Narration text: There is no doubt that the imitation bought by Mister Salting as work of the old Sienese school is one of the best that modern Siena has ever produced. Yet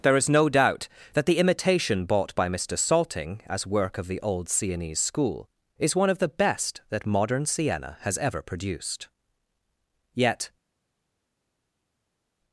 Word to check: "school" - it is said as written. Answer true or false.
true